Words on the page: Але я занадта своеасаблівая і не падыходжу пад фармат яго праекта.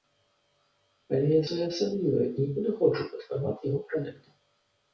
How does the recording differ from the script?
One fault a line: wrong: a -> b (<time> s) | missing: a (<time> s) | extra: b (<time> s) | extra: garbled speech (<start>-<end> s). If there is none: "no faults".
missing: занадта (1.4 s)